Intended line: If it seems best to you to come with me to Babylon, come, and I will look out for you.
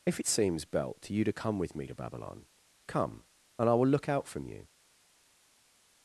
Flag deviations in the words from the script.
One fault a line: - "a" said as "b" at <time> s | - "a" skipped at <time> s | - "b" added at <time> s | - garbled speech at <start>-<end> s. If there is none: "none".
- "best" said as "belt" at 0.6 s
- "for" said as "from" at 4.3 s